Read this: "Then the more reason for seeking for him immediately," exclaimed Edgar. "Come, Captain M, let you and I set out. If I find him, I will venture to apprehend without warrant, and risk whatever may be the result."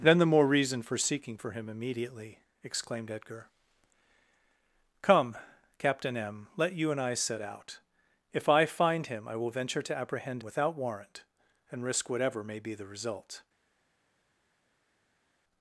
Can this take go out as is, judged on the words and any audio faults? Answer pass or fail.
pass